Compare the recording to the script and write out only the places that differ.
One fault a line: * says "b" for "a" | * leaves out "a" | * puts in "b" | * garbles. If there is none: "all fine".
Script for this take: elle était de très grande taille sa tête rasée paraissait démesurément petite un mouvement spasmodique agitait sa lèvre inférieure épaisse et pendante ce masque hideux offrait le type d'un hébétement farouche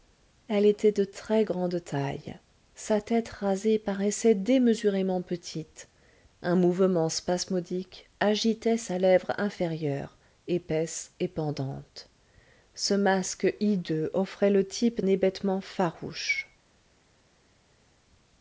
* leaves out "d'un"